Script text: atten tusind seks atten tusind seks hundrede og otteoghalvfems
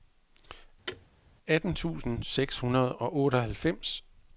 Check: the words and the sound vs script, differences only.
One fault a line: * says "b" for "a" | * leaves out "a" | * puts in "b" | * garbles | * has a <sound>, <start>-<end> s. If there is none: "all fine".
* has a thud, 0.9-1.1 s
* leaves out "atten tusind seks"